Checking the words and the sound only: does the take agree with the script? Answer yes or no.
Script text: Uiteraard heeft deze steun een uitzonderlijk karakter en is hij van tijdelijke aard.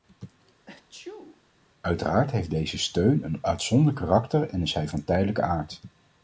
no